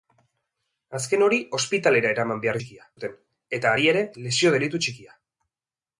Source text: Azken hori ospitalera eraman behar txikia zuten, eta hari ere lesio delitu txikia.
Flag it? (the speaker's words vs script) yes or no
no